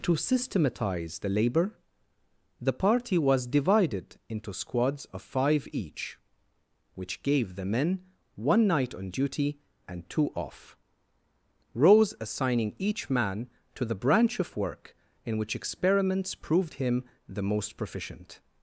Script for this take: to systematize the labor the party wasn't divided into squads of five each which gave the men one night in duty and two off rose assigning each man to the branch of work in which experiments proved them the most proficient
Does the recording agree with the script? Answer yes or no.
no